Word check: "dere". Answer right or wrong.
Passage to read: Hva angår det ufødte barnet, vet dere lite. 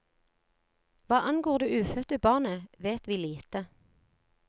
wrong